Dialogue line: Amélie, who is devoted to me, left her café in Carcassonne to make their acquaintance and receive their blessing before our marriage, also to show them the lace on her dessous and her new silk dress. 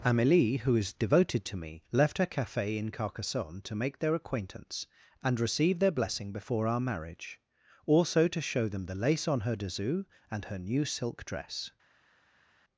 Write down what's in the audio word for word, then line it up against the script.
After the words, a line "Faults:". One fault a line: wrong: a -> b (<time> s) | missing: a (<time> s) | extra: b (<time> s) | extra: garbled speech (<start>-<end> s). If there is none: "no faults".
Amélie, who is devoted to me, left her café in Carcassonne to make their acquaintance and receive their blessing before our marriage, also to show them the lace on her dessous and her new silk dress.
Faults:
no faults